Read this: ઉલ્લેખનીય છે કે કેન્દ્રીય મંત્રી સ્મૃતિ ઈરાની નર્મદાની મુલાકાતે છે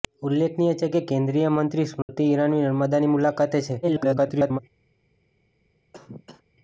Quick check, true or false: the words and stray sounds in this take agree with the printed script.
false